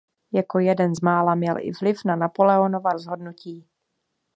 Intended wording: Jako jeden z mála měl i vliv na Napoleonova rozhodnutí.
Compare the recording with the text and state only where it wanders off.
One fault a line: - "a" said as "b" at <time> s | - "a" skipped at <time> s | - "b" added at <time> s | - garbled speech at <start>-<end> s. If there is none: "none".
none